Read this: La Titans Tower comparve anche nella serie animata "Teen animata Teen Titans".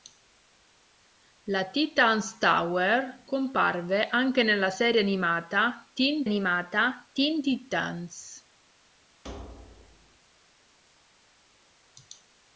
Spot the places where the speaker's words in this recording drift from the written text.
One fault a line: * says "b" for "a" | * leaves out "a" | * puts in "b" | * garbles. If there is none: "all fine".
all fine